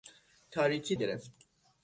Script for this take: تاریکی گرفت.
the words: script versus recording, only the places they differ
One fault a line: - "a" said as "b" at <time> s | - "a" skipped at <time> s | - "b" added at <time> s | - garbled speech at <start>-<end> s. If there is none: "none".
none